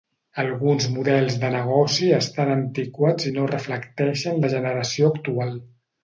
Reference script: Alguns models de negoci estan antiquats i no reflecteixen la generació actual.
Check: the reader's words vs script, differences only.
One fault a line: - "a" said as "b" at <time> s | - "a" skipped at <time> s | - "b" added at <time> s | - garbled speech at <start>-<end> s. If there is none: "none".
none